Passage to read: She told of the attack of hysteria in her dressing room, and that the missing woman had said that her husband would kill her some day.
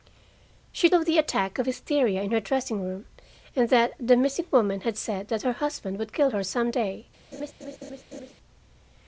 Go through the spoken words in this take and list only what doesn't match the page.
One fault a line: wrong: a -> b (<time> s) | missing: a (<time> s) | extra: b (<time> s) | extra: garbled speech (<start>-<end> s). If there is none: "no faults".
missing: told (0.9 s)